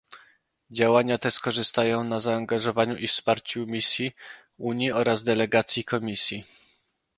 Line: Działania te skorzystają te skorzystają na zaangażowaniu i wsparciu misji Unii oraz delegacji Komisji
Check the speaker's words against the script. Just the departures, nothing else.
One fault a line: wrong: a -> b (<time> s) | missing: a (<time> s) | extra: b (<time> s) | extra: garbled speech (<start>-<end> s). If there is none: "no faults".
missing: te skorzystają (2.0 s)